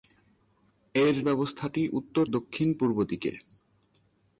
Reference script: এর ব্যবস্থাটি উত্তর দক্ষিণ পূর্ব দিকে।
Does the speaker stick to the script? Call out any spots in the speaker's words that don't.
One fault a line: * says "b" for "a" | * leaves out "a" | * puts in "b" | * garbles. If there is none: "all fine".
all fine